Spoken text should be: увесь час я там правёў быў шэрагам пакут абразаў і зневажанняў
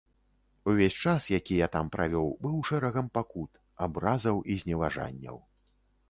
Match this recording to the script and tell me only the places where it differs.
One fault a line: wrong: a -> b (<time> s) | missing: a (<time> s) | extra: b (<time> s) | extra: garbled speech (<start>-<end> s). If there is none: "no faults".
extra: які (1.4 s)